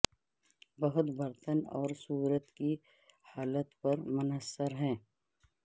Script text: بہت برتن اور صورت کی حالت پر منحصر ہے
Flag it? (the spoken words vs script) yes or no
no